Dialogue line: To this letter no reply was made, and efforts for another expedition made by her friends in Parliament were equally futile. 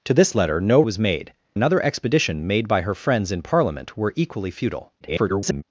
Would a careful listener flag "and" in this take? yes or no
yes